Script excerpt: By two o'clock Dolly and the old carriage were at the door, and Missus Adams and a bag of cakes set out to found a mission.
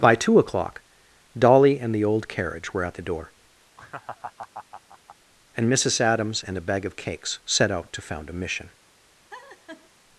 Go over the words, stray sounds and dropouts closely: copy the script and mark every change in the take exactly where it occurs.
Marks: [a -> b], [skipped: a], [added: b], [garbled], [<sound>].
By two o'clock Dolly and the old carriage were at the door, [laugh] and Missus Adams and a bag of cakes set out to found a mission. [laugh]